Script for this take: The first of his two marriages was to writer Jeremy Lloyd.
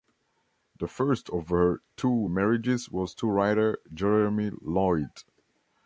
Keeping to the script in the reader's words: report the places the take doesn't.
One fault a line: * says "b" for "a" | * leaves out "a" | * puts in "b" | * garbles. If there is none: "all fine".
* says "her" for "his"